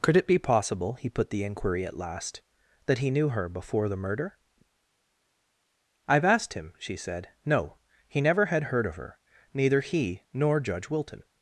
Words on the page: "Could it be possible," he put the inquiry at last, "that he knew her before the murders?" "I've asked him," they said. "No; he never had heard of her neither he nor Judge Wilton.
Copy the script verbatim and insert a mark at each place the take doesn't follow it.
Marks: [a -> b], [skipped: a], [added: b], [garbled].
"Could it be possible," he put the inquiry at last, "that he knew her before the [murders?" -> murder] "I've asked him," [they -> she] said. "No; he never had heard of her neither he nor Judge Wilton.